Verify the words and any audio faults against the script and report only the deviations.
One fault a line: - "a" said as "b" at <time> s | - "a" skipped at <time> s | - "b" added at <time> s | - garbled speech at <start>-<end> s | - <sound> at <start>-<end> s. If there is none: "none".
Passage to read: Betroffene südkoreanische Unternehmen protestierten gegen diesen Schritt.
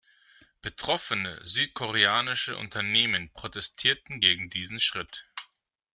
none